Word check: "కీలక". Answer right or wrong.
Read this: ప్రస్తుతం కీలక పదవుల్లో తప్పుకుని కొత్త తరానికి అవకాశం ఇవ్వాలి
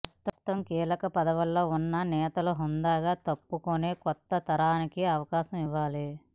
right